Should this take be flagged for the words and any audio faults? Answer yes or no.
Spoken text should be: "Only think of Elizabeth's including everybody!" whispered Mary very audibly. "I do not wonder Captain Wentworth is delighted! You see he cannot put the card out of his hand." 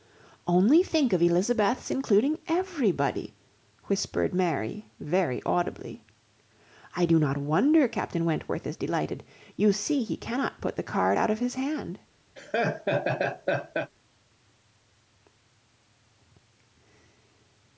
yes